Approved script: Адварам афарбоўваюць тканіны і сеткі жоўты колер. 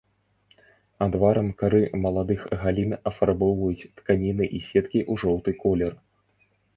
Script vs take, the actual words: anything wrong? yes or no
yes